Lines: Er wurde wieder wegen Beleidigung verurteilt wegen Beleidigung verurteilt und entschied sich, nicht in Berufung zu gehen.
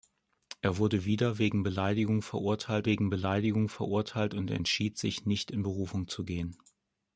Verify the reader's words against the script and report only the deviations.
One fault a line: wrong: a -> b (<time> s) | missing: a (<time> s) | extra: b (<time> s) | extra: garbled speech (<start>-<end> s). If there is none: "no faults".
no faults